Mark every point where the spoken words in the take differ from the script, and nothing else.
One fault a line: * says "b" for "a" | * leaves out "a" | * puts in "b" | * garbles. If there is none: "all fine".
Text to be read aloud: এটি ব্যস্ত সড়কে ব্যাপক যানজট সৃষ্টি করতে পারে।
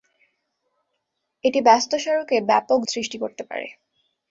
* leaves out "যানজট"